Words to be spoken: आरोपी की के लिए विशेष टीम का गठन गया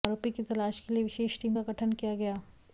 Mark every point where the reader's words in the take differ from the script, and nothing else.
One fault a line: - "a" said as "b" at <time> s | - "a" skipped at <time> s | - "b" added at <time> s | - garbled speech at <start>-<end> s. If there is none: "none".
- "तलाश" added at 0.4 s
- "किया" added at 1.9 s